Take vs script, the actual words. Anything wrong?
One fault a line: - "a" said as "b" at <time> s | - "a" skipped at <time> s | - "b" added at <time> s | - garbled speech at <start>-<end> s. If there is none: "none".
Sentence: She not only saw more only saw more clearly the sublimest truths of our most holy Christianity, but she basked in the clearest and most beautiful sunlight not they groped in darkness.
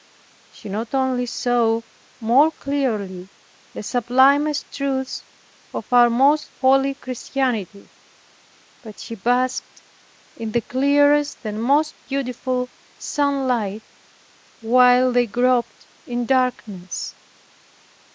- "only saw more" skipped at 2.5 s
- "not" said as "while" at 14.6 s